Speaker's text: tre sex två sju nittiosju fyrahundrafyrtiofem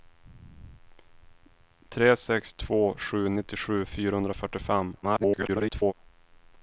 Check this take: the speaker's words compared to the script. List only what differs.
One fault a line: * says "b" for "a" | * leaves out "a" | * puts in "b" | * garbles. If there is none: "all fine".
* garbles